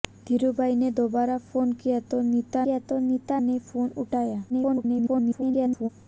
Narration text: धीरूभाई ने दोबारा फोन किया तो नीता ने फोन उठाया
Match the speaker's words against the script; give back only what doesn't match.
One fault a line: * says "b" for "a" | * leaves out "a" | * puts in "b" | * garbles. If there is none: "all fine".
* puts in "किया तो नीता"
* garbles